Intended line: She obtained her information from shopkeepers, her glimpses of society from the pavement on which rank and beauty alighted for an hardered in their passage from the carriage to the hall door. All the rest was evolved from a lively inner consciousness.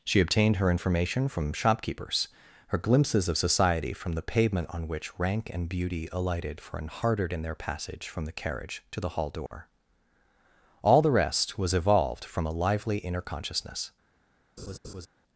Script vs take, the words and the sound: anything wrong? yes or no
yes